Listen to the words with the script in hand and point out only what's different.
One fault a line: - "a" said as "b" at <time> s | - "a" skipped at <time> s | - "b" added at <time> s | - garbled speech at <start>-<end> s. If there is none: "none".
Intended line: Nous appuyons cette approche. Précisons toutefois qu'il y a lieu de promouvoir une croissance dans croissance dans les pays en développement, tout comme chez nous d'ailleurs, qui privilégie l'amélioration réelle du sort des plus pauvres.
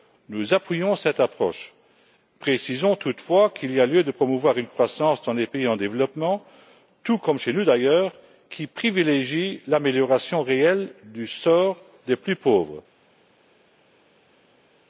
- "croissance dans" skipped at 5.3 s